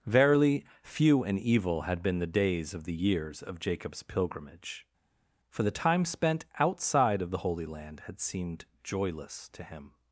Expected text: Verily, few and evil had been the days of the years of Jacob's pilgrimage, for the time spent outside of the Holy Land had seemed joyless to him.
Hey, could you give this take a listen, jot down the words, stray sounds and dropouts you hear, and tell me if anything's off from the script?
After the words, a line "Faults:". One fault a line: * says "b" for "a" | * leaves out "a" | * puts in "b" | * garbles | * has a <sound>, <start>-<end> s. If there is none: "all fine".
Verily, few and evil had been the days of the years of Jacob's pilgrimage, for the time spent outside of the Holy Land had seemed joyless to him.
Faults:
all fine